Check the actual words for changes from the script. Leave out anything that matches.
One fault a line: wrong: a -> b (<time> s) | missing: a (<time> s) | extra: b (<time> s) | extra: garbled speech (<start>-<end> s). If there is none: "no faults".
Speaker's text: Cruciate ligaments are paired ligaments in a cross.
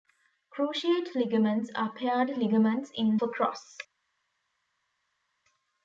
no faults